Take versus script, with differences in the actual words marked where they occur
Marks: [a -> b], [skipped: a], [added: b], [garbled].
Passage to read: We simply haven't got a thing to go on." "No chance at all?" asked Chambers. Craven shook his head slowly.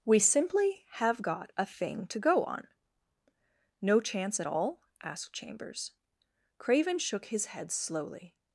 We simply [haven't -> have] got a thing to go on." "No chance at all?" asked Chambers. Craven shook his head slowly.